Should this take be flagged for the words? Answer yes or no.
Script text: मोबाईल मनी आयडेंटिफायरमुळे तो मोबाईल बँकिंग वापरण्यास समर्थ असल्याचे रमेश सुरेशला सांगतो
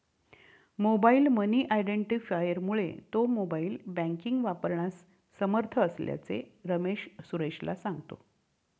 no